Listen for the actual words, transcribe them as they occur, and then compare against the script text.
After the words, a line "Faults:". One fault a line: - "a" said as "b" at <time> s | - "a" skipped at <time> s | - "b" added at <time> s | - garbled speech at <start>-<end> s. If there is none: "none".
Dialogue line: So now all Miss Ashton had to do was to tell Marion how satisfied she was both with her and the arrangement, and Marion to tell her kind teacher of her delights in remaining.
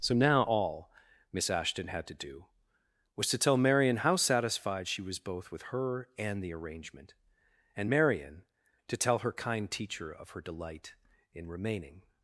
So now all Miss Ashton had to do was to tell Marion how satisfied she was both with her and the arrangement, and Marion to tell her kind teacher of her delight in remaining.
Faults:
- "delights" said as "delight" at 10.4 s